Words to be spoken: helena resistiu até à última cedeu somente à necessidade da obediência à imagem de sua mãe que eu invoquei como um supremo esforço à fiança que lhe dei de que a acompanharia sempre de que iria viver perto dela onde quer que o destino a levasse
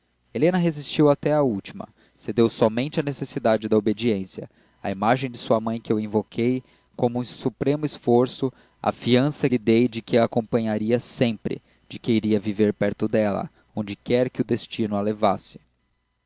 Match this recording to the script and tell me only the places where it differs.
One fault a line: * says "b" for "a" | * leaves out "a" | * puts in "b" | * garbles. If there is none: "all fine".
* leaves out "que"